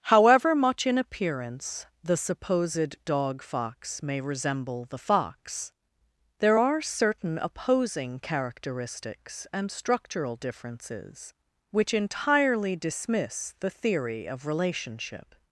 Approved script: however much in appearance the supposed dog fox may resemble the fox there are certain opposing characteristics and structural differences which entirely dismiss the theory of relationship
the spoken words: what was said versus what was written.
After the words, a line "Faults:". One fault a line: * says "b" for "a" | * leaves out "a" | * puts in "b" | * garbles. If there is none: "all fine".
however much in appearance the supposed dog fox may resemble the fox there are certain opposing characteristics and structural differences which entirely dismiss the theory of relationship
Faults:
all fine